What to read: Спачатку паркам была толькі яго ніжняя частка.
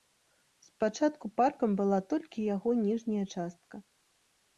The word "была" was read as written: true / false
true